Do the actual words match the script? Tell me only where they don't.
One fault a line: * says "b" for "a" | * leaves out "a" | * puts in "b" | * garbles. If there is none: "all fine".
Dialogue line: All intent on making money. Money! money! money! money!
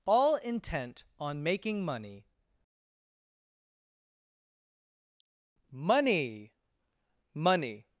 * leaves out "money money"